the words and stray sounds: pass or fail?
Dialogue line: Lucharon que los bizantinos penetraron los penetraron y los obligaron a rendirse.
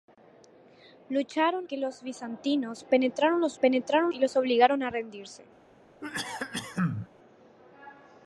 fail